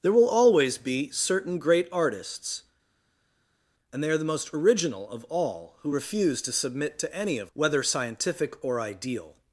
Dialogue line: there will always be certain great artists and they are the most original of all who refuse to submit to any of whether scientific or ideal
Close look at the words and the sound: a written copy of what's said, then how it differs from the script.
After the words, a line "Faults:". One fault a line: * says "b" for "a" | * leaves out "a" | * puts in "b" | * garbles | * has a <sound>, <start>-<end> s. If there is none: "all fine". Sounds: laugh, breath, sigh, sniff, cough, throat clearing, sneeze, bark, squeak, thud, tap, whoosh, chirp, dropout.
there will always be certain great artists and they are the most original of all who refuse to submit to any of whether scientific or ideal
Faults:
all fine